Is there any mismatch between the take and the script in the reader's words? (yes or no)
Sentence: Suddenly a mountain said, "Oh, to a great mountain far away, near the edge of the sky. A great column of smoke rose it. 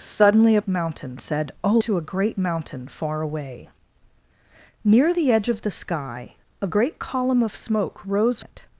no